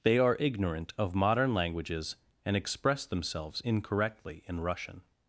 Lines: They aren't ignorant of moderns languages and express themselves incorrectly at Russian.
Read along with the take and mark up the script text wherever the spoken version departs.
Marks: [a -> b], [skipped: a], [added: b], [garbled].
They [aren't -> are] ignorant of [moderns -> modern] languages and express themselves incorrectly [at -> in] Russian.